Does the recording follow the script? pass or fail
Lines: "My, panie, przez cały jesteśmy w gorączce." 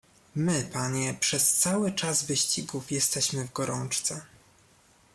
fail